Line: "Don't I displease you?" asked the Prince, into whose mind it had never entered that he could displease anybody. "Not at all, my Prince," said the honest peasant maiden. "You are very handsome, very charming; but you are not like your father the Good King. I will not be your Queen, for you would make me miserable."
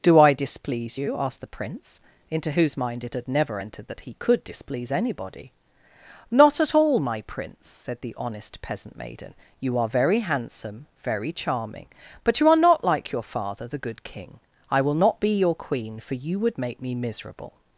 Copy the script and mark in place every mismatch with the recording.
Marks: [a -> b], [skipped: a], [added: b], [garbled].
["Don't -> Do] I displease you?" asked the Prince, into whose mind it had never entered that he could displease anybody. "Not at all, my Prince," said the honest peasant maiden. "You are very handsome, very charming; but you are not like your father the Good King. I will not be your Queen, for you would make me miserable."